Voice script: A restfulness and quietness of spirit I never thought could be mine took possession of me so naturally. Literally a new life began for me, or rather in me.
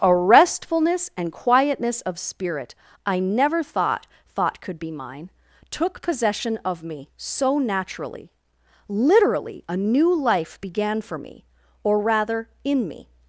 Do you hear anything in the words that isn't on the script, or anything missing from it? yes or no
yes